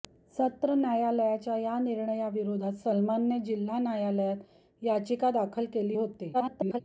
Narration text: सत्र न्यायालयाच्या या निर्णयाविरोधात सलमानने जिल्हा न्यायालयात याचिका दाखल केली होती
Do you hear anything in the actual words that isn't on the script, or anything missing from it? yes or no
yes